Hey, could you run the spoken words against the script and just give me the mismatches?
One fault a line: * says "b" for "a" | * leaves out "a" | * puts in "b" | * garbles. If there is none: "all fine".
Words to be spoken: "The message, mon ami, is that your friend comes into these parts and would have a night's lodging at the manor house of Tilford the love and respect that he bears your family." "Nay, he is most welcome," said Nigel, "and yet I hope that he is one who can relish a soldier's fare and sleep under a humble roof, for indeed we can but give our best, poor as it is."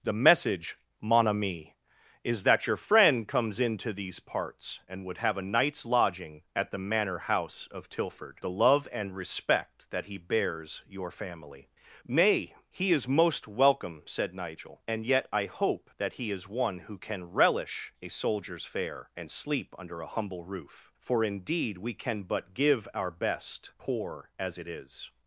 all fine